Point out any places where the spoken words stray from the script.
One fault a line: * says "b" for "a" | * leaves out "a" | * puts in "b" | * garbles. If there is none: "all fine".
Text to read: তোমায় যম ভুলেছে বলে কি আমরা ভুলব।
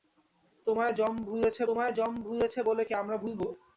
* puts in "তোমায় যম ভুলেছে"